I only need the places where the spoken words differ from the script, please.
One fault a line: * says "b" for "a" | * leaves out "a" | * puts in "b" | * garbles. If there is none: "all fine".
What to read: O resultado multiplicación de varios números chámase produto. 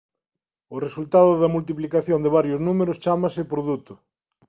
* puts in "da"